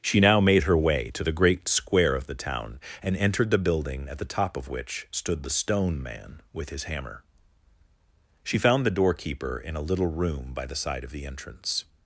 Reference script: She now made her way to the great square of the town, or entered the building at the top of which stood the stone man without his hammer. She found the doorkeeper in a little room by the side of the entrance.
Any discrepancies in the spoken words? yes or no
yes